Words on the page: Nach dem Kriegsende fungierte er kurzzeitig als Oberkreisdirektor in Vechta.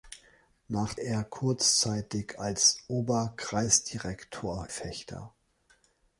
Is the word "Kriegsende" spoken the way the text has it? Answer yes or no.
no